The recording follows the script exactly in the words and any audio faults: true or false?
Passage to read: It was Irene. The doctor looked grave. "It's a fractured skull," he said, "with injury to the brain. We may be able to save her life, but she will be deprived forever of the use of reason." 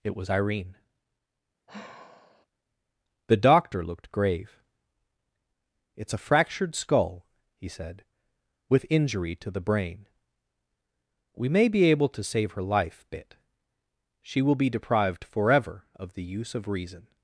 false